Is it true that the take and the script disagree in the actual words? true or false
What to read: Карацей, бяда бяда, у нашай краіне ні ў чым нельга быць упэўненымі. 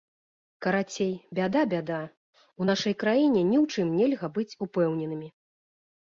false